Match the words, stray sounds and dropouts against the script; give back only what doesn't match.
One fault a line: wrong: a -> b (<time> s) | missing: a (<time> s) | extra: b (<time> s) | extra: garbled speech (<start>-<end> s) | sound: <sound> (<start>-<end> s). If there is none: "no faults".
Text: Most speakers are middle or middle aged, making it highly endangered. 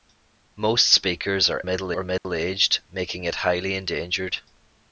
sound: dropout (2.2-2.2 s)